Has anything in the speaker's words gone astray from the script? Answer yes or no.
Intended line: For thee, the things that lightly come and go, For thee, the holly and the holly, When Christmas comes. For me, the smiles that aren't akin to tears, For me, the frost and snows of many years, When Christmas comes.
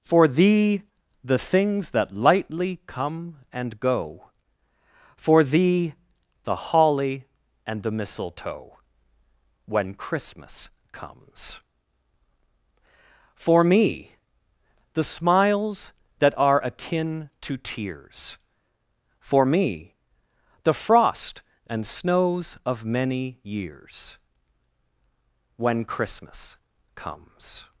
yes